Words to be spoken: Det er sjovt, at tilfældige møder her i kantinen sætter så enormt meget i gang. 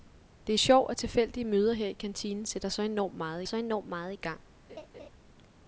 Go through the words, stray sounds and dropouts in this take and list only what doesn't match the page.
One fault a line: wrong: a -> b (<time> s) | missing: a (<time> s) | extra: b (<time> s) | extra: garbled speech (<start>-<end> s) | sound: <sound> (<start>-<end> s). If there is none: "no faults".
extra: så enormt meget (3.4 s)
sound: laugh (4.7-5.1 s)